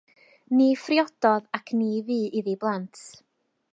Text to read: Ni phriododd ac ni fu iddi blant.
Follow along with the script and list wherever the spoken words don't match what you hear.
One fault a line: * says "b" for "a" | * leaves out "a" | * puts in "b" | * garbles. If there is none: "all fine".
all fine